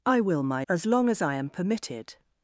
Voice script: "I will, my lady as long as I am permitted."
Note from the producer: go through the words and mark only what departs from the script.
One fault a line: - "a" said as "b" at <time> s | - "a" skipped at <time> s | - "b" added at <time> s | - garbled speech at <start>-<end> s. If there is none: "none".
- "lady" skipped at 0.7 s